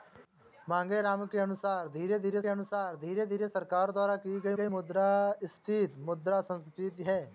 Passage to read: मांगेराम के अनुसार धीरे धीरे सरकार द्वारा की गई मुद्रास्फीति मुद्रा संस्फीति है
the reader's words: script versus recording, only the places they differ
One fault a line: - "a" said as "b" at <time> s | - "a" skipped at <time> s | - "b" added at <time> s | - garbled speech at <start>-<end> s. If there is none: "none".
- "अनुसार धीरे धीरे" added at 2.5 s
- "गई" added at 4.5 s